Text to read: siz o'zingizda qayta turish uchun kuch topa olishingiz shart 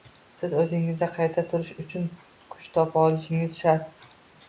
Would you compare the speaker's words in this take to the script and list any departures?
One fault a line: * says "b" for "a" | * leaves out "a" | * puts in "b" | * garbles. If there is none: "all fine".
all fine